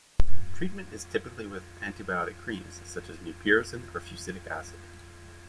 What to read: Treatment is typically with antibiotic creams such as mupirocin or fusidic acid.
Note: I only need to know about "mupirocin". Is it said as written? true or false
true